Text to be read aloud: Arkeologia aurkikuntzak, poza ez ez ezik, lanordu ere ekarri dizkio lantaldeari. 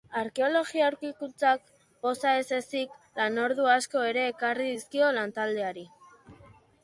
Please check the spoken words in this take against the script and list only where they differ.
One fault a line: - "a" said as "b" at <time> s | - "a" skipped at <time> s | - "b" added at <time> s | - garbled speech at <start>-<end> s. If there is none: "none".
- "ez" skipped at 2.5 s
- "asko" added at 3.8 s